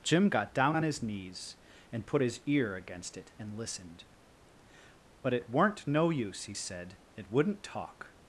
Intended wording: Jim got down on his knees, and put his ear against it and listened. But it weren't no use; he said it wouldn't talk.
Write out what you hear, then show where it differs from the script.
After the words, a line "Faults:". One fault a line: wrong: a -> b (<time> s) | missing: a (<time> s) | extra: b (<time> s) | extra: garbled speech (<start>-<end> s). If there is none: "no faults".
Jim got down on his knees, and put his ear against it and listened. But it weren't no use; he said it wouldn't talk.
Faults:
no faults